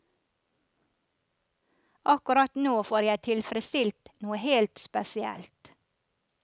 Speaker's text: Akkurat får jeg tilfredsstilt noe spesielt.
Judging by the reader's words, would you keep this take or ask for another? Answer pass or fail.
fail